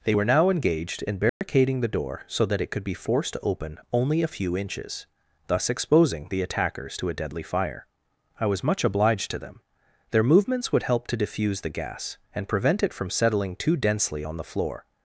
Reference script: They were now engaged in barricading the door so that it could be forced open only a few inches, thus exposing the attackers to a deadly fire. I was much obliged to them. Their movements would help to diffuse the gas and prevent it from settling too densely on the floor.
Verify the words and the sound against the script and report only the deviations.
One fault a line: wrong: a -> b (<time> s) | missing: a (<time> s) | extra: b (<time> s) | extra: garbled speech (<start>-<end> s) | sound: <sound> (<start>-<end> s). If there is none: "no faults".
sound: dropout (1.3-1.4 s)
extra: to (3.3 s)